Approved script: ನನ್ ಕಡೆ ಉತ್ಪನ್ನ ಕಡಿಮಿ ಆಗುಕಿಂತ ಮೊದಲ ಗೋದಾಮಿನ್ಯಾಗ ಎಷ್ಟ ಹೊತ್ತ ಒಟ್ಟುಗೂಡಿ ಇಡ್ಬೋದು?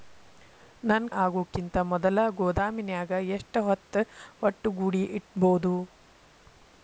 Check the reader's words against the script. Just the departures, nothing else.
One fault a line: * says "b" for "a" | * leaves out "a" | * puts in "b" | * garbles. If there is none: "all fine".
* leaves out "ಕಡೆ ಉತ್ಪನ್ನ ಕಡಿಮಿ"